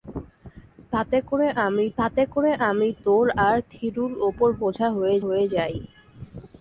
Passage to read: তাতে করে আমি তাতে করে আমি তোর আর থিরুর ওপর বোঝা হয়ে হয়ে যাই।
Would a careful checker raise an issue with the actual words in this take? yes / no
no